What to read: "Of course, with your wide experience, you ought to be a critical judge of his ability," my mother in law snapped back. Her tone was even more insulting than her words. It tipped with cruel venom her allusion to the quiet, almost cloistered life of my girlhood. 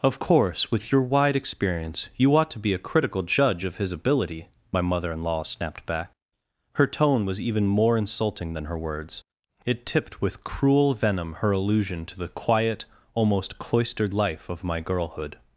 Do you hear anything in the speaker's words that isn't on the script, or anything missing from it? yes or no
no